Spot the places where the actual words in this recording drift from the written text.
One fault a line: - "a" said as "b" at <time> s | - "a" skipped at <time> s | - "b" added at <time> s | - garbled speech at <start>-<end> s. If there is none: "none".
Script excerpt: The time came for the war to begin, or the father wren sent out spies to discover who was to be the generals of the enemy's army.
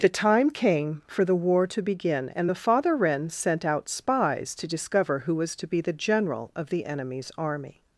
- "or" said as "and" at 2.3 s
- "generals" said as "general" at 5.9 s